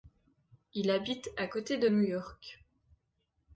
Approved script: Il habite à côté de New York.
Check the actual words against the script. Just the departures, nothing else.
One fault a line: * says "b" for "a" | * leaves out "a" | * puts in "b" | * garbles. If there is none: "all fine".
all fine